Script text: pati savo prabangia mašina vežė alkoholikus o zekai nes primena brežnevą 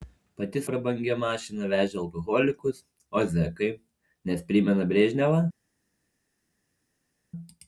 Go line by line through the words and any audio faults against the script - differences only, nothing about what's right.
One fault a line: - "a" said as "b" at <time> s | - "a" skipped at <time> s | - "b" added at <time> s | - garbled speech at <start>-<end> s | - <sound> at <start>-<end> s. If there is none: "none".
- "savo" skipped at 0.6 s